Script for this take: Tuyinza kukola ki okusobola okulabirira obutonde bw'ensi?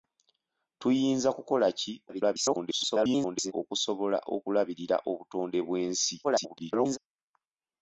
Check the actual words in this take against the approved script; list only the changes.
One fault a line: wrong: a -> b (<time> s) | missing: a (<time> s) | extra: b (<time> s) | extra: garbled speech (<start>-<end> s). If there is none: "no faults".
extra: garbled speech (2.1-3.5 s)
extra: garbled speech (6.2-7.0 s)